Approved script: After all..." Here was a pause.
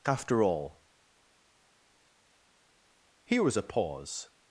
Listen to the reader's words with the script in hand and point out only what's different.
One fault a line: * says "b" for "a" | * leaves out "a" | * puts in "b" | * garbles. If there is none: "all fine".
all fine